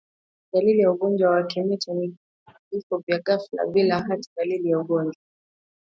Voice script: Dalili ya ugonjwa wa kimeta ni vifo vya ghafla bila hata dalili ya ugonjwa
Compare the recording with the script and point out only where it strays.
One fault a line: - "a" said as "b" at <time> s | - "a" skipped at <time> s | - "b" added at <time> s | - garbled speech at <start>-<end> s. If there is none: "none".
none